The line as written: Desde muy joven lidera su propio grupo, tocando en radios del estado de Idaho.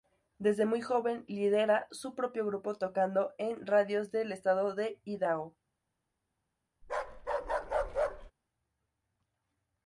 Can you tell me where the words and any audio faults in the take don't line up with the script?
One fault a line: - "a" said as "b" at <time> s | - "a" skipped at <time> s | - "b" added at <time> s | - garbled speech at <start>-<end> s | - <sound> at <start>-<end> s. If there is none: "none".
- bark at 6.8-8.3 s